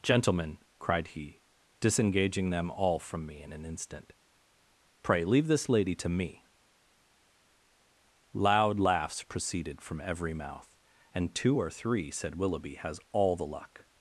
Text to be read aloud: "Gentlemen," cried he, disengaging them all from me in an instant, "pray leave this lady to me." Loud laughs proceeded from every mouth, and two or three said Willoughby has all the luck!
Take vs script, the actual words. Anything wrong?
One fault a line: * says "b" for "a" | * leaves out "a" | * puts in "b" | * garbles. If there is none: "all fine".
all fine